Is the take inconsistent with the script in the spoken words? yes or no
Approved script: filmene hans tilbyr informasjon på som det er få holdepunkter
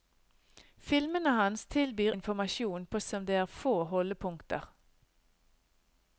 no